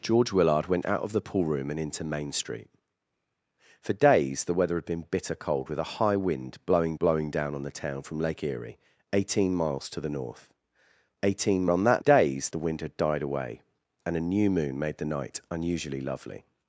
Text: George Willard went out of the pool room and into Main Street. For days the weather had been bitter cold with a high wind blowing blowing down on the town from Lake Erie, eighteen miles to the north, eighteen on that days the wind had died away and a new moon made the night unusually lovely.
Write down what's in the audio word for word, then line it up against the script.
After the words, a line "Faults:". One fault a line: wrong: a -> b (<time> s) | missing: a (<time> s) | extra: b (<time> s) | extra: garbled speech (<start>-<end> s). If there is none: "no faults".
George Willard went out of the pool room and into Main Street. For days the weather had been bitter cold with a high wind blowing blowing down on the town from Lake Erie, eighteen miles to the north, eighteen on that days the wind had died away and a new moon made the night unusually lovely.
Faults:
no faults